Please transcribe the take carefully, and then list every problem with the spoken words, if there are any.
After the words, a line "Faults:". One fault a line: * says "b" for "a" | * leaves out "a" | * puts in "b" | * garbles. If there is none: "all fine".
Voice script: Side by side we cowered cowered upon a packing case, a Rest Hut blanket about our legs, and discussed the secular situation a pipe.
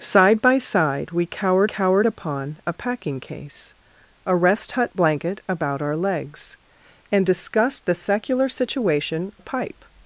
Side by side we cowered cowered upon a packing case, a Rest Hut blanket about our legs, and discussed the secular situation a pipe.
Faults:
all fine